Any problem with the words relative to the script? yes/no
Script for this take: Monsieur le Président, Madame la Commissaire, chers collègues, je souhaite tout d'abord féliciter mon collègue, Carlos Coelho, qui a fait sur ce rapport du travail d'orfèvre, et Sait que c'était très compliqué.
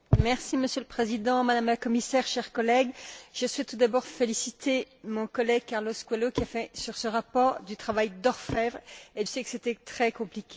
no